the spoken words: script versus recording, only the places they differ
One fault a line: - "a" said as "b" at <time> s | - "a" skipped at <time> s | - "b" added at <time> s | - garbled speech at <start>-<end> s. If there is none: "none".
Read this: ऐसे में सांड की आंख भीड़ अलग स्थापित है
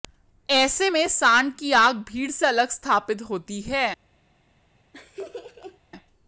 - "से" added at 2.3 s
- "होती" added at 3.2 s